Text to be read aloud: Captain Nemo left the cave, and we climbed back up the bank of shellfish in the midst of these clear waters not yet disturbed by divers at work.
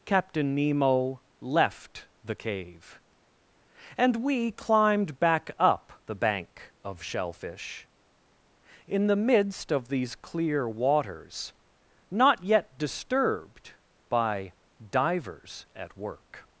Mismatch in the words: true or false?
false